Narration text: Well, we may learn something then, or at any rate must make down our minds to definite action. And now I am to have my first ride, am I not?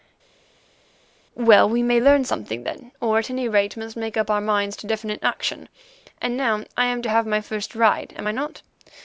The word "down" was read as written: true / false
false